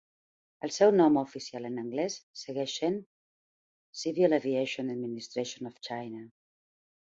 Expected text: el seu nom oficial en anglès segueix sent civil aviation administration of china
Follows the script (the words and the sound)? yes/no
yes